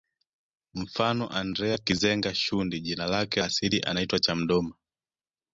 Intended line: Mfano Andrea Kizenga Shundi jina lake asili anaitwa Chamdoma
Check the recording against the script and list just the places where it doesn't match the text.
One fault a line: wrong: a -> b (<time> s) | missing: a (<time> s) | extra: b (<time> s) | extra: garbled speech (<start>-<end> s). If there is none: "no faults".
no faults